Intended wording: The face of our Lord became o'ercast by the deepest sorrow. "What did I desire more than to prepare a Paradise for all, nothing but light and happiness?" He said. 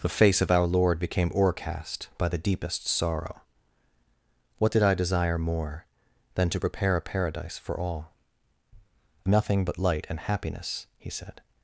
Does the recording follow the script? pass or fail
pass